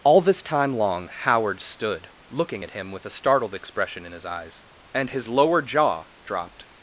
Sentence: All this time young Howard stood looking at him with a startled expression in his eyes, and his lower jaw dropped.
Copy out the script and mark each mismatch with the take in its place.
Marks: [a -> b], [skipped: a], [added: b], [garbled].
All this time [young -> long] Howard stood looking at him with a startled expression in his eyes, and his lower jaw dropped.